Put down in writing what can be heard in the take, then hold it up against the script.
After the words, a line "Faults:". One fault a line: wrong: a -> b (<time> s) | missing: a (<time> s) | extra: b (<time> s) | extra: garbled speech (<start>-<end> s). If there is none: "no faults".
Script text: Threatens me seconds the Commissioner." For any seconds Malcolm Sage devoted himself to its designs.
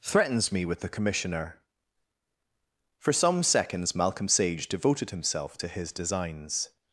Threatens me with the Commissioner." For some seconds Malcolm Sage devoted himself to his designs.
Faults:
wrong: seconds -> with (0.7 s)
wrong: any -> some (3.1 s)
wrong: its -> his (5.7 s)